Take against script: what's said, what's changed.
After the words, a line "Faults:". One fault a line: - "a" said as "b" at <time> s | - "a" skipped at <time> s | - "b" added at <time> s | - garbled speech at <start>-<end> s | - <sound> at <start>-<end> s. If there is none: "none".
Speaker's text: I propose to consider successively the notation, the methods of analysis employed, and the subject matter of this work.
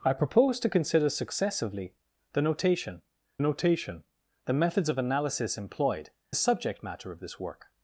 I propose to consider successively the notation notation, the methods of analysis employed, the subject matter of this work.
Faults:
- "notation" added at 3.4 s
- "and" skipped at 6.1 s